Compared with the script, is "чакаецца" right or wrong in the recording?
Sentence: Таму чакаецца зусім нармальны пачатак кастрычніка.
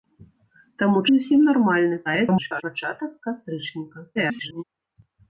wrong